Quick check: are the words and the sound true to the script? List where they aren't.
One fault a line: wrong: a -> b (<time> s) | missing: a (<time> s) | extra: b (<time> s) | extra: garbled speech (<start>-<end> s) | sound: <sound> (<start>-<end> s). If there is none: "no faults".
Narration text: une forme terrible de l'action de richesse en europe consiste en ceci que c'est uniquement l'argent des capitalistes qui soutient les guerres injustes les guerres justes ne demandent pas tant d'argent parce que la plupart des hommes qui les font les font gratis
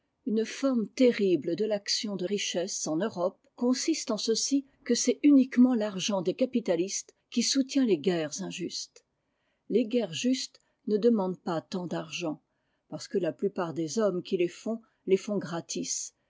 no faults